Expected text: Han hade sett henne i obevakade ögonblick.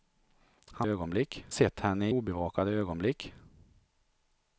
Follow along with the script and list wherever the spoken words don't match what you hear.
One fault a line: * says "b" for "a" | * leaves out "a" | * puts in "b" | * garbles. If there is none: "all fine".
* says "ögonblick" for "hade"
* leaves out "i"